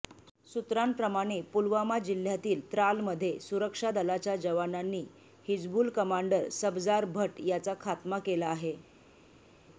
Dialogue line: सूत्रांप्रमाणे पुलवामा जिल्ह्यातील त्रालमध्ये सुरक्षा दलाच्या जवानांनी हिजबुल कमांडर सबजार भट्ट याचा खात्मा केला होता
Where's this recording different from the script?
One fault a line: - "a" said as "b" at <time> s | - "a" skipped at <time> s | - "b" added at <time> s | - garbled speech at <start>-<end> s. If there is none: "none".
- "होता" said as "आहे" at 8.5 s